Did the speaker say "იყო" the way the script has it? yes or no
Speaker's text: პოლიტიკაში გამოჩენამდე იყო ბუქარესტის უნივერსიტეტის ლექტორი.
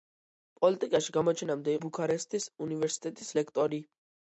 no